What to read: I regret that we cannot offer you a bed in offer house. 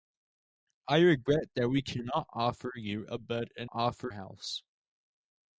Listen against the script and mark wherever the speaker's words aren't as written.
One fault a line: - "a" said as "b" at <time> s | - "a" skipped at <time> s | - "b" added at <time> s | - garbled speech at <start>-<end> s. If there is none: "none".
none